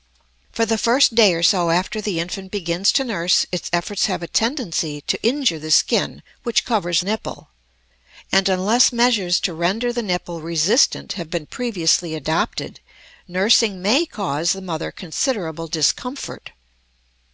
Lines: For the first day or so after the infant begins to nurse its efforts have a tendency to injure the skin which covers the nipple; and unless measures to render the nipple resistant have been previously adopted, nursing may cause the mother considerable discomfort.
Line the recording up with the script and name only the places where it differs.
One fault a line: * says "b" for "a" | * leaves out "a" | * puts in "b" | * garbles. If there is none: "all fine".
* leaves out "the"